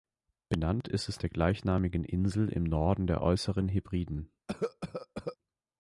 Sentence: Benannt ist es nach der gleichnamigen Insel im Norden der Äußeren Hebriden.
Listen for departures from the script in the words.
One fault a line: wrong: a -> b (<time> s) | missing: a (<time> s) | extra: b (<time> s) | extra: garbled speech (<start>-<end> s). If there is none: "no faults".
missing: nach (1.2 s)